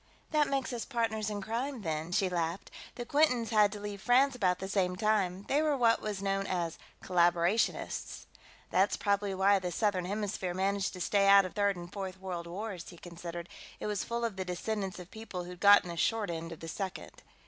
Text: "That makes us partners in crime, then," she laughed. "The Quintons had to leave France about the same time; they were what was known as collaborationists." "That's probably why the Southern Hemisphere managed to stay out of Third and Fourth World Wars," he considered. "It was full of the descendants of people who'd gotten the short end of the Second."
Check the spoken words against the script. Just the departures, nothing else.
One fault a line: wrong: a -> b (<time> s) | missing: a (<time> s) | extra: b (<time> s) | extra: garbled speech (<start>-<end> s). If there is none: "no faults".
no faults